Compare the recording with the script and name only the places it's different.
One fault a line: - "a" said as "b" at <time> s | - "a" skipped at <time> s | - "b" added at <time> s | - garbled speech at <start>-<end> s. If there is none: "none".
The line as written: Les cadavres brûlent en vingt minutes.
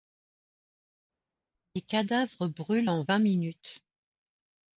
none